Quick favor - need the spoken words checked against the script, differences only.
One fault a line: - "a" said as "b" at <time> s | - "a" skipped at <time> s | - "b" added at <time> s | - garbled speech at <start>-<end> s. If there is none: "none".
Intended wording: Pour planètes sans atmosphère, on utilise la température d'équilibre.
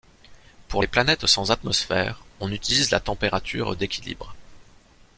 - "les" added at 0.8 s